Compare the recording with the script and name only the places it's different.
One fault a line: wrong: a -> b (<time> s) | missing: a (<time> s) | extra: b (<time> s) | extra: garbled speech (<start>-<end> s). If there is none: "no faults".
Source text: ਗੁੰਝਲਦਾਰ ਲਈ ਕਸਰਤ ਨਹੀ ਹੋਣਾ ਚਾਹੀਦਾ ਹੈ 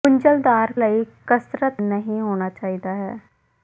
no faults